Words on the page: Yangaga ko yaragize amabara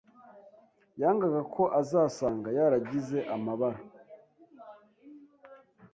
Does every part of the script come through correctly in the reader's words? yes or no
no